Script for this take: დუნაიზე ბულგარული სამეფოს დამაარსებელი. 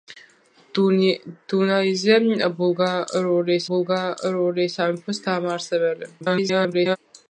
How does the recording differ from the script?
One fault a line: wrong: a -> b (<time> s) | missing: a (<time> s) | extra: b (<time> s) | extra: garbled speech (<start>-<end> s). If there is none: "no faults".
extra: ბულგარული (3.7 s)
extra: garbled speech (6.2-7.0 s)